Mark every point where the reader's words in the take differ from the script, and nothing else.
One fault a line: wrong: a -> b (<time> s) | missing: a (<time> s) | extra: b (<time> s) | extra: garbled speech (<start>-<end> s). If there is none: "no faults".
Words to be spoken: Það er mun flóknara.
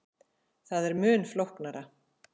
no faults